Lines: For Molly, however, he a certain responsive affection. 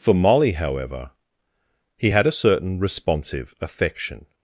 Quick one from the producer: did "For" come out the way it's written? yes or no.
yes